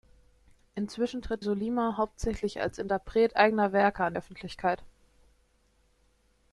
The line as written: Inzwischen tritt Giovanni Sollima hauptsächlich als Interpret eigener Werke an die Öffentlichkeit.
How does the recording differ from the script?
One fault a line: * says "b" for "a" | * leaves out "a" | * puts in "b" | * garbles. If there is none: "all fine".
* leaves out "Giovanni"
* leaves out "die"